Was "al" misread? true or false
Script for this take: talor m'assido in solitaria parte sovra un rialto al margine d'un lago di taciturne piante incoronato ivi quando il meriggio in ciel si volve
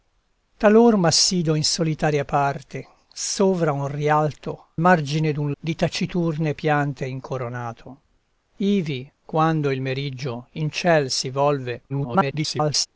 true